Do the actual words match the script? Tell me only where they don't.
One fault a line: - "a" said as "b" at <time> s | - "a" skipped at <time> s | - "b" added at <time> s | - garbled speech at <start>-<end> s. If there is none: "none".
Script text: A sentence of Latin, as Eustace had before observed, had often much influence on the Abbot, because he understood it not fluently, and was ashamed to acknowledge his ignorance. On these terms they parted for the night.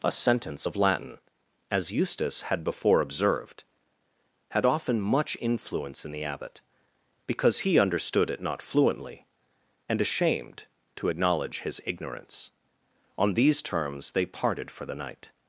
- "on" said as "in" at 6.0 s
- "was" skipped at 10.0 s